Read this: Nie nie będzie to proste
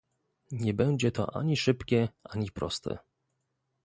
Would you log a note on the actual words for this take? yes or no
yes